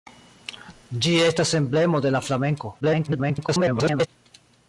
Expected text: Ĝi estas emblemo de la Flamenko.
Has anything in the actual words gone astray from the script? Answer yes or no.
yes